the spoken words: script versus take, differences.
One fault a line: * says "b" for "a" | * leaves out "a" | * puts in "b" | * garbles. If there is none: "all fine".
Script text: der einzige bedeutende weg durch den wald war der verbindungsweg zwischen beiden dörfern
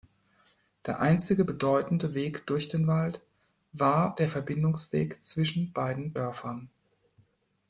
all fine